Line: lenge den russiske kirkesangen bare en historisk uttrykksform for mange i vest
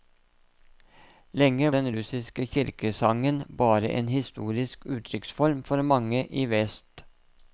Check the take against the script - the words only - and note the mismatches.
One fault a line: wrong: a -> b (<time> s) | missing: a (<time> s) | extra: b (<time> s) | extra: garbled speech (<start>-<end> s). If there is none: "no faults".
no faults